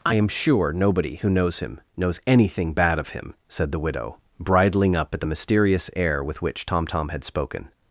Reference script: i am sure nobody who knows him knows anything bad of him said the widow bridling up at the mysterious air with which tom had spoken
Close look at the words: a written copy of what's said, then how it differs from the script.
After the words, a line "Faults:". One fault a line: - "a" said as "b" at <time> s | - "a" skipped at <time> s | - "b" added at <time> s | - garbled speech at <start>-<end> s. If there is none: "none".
i am sure nobody who knows him knows anything bad of him said the widow bridling up at the mysterious air with which tom tom had spoken
Faults:
- "tom" added at 6.9 s